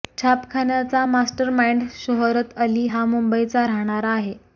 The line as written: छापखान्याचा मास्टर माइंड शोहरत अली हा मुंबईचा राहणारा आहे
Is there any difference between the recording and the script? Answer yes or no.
no